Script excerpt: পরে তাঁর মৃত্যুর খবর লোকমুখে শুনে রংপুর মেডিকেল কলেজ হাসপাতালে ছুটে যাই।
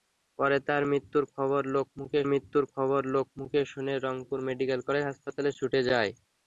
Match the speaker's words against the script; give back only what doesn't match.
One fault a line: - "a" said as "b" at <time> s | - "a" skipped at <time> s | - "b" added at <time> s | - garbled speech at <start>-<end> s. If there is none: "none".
- "মৃত্যুর খবর লোকমুখে" added at 2.3 s